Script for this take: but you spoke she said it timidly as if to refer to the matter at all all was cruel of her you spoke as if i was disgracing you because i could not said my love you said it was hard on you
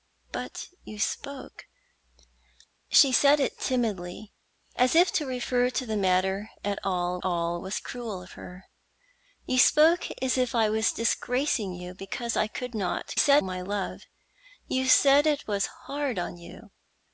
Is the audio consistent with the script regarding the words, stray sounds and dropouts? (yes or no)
yes